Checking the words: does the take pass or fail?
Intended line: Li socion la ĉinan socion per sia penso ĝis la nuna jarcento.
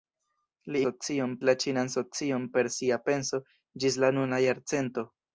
pass